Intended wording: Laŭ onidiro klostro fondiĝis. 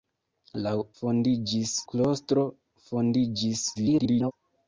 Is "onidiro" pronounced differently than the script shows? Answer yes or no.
yes